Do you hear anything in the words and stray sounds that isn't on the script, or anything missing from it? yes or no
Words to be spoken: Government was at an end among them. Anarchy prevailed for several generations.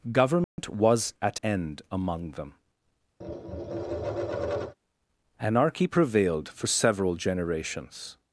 yes